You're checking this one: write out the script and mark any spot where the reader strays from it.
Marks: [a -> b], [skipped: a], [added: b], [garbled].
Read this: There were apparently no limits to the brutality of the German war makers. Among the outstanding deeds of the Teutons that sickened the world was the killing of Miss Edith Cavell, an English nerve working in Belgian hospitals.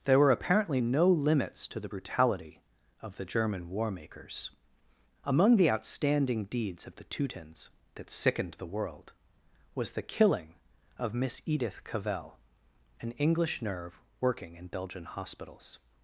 There were apparently no limits to the brutality of the German war makers. Among the outstanding deeds of the Teutons that sickened the world was the killing of Miss Edith Cavell, an English nerve working in Belgian hospitals.